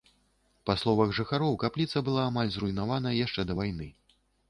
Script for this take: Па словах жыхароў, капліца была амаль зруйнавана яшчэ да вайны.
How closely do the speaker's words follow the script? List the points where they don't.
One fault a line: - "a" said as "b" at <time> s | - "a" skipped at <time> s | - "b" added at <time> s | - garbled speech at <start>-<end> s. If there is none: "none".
none